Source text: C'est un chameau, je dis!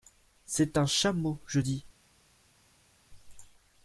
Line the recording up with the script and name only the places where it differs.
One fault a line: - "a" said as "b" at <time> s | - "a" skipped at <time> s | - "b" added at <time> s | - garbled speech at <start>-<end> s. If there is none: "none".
none